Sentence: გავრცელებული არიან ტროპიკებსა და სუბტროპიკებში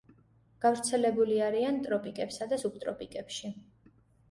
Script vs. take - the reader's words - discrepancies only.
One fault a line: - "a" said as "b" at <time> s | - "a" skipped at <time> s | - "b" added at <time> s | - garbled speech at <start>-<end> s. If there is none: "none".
none